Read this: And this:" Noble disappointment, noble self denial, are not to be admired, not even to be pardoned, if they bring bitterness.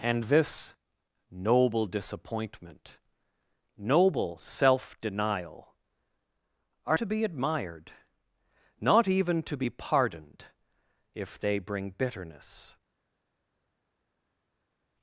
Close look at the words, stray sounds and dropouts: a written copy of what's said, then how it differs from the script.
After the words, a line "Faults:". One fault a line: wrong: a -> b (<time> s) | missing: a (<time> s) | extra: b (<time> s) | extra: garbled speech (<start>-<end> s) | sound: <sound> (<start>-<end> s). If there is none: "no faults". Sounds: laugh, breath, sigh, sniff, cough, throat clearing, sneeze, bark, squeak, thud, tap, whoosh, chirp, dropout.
And this:" Noble disappointment, noble self denial, are to be admired, not even to be pardoned, if they bring bitterness.
Faults:
missing: not (7.0 s)